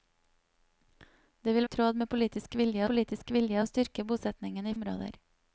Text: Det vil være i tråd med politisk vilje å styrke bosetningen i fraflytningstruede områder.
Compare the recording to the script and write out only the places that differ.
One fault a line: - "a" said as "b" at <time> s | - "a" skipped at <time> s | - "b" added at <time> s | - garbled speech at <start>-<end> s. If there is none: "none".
- "være" skipped at 1.7 s
- "politisk vilje" added at 2.9 s
- "fraflytningstruede" skipped at 4.7 s